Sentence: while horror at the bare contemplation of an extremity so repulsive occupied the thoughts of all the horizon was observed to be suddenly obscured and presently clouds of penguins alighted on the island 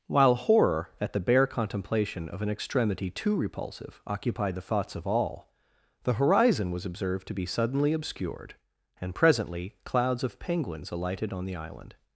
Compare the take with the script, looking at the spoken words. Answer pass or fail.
fail